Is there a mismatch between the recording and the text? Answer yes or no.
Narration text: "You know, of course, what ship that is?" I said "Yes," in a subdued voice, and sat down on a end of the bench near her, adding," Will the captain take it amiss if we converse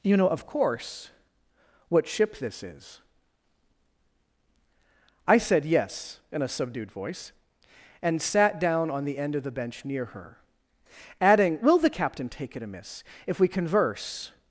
yes